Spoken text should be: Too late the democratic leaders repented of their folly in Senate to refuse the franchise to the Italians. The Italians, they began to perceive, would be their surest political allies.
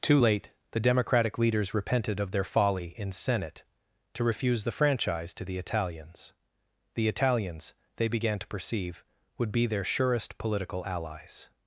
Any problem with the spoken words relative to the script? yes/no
no